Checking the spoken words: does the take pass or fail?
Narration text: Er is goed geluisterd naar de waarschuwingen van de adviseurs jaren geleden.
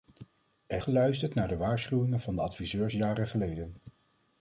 fail